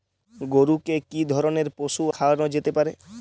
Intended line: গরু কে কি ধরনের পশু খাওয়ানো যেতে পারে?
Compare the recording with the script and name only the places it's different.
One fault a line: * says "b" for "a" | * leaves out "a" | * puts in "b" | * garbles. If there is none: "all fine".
all fine